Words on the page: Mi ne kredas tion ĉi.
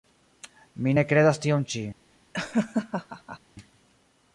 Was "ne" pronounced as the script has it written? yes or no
yes